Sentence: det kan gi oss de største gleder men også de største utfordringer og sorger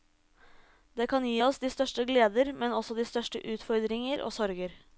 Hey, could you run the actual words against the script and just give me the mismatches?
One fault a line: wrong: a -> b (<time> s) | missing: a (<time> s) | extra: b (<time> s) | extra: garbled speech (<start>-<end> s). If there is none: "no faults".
no faults